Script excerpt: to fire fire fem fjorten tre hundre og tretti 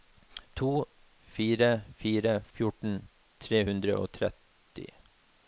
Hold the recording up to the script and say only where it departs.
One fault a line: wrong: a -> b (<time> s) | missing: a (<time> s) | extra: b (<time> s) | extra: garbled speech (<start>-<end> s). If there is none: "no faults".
missing: fem (2.3 s)